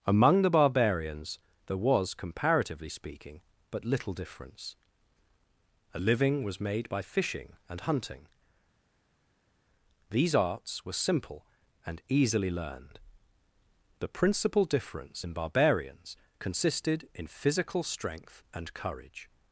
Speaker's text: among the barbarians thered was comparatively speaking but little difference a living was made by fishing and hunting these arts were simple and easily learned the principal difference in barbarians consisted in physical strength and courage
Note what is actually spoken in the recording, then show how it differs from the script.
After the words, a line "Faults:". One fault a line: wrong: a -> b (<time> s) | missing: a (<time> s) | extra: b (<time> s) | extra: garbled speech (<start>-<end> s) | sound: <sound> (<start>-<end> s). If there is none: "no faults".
among the barbarians there was comparatively speaking but little difference a living was made by fishing and hunting these arts were simple and easily learned the principal difference in barbarians consisted in physical strength and courage
Faults:
wrong: thered -> there (1.7 s)